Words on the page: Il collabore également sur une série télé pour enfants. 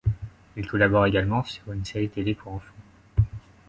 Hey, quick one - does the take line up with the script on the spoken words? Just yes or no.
yes